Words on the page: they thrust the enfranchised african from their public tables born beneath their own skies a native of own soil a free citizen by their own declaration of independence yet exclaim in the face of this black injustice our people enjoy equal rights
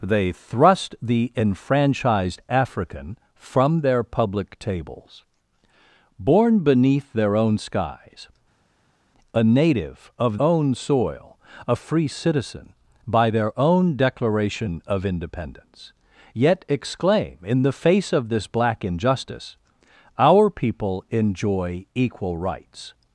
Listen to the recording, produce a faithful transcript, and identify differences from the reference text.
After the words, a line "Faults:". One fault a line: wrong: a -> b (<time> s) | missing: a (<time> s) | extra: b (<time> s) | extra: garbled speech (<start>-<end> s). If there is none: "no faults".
they thrust the enfranchised african from their public tables born beneath their own skies a native of own soil a free citizen by their own declaration of independence yet exclaim in the face of this black injustice our people enjoy equal rights
Faults:
no faults